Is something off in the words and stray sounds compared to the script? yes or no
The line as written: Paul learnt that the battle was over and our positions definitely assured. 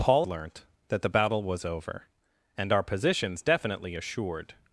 no